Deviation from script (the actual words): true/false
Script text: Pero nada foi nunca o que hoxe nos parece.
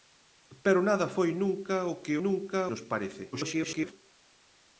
true